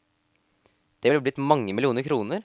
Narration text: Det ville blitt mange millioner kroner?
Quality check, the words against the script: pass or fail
pass